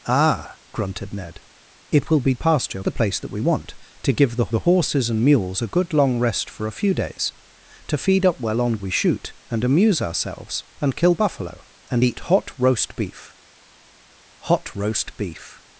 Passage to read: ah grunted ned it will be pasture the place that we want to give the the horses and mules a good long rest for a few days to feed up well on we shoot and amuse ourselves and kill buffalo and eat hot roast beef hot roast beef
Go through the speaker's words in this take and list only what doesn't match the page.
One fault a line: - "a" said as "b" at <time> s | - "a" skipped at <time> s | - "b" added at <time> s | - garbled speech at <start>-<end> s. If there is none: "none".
none